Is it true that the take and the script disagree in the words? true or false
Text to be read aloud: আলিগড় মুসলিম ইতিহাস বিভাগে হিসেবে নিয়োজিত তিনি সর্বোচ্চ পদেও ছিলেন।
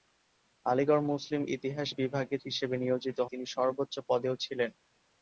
false